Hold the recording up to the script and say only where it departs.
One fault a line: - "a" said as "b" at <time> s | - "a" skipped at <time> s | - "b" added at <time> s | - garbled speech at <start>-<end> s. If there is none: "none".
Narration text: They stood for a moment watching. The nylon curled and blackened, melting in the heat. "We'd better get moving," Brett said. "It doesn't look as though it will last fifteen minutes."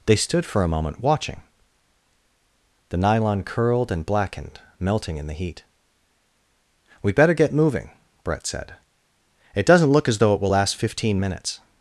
none